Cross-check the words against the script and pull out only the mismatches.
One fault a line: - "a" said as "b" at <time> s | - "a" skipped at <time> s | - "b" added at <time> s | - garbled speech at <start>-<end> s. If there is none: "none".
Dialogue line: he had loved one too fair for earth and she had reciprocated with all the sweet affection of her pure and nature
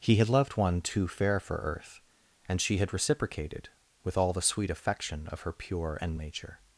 none